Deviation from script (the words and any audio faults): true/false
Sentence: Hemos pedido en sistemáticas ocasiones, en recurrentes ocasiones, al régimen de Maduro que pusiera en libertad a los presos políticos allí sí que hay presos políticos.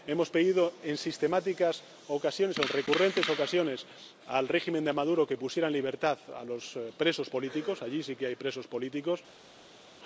false